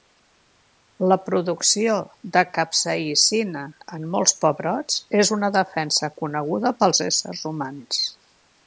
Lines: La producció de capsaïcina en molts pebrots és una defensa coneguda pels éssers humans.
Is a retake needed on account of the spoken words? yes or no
no